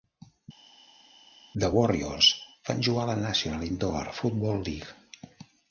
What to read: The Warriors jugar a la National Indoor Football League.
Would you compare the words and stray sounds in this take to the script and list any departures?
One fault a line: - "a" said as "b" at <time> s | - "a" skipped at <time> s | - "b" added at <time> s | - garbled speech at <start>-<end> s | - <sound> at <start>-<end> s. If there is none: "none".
- "van" added at 2.7 s